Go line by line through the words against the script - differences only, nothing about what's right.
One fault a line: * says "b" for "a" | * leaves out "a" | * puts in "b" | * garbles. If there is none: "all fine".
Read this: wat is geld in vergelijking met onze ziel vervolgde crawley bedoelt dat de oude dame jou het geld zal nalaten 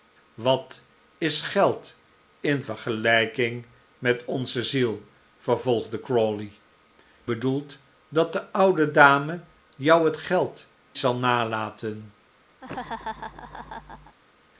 all fine